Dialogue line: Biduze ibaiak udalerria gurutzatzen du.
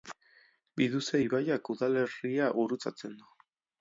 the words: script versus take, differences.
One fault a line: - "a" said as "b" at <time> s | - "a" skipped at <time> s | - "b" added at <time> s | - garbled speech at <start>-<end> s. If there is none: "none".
none